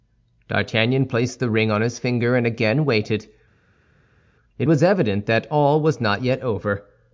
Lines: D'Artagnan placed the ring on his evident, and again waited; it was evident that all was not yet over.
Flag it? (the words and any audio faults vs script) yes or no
yes